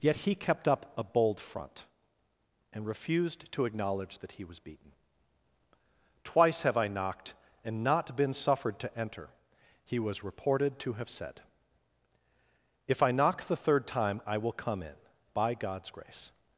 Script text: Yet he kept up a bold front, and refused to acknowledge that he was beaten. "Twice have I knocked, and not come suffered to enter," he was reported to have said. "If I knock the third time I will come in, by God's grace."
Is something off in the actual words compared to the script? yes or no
yes